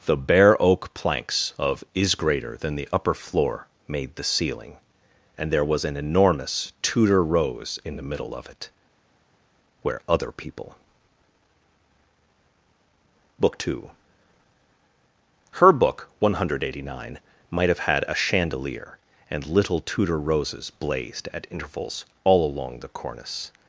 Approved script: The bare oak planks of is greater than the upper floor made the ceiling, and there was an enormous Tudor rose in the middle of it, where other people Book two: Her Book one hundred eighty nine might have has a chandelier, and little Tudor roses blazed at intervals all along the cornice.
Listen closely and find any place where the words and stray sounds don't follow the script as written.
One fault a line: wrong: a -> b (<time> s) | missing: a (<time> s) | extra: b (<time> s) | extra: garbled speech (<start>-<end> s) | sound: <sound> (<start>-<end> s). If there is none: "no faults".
wrong: has -> had (17.8 s)